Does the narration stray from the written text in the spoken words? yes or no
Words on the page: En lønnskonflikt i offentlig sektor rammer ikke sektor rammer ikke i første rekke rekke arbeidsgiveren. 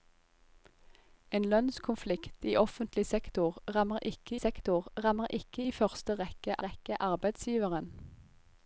no